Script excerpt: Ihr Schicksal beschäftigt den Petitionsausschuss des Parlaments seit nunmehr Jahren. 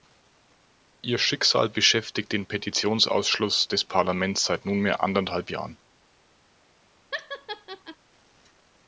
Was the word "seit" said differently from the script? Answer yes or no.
no